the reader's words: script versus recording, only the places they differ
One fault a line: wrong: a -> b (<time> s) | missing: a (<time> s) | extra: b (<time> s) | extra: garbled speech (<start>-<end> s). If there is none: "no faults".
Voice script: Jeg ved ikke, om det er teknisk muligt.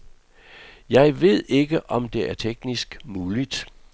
no faults